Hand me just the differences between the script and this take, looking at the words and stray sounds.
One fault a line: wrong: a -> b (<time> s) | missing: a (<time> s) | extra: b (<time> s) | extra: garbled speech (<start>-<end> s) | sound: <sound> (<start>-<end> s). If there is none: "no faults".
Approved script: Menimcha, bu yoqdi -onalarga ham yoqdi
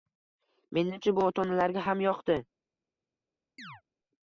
wrong: yoqdi -> ota (1.3 s)
sound: chirp (3.6-3.8 s)